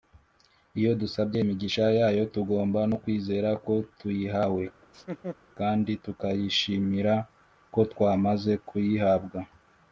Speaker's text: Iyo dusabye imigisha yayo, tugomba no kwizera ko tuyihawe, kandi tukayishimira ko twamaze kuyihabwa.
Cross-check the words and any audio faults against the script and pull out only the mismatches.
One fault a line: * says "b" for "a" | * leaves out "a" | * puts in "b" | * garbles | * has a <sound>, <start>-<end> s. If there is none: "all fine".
* has a laugh, 4.8-5.4 s